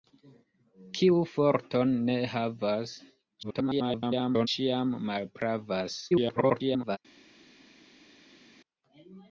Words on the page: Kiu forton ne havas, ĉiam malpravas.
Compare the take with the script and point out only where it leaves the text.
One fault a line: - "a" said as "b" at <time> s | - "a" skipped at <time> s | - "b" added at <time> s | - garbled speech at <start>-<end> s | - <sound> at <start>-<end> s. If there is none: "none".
- garbled speech at 3.4-4.5 s
- garbled speech at 6.1-7.0 s